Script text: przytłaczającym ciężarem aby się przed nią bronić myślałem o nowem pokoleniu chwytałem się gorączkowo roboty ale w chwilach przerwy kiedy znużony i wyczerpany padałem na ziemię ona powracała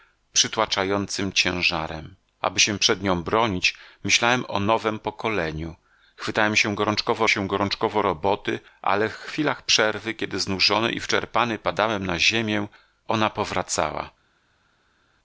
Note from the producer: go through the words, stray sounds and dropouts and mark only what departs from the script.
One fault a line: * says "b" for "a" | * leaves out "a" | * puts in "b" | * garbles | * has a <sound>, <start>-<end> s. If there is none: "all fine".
* puts in "się gorączkowo"